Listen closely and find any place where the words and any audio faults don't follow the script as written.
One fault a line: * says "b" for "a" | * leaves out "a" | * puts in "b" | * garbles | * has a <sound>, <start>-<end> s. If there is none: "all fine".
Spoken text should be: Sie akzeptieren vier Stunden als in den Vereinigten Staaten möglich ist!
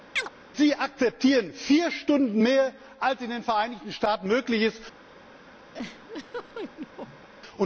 * has a chirp, 0.2-0.3 s
* puts in "mehr"
* has a laugh, 5.7-7.3 s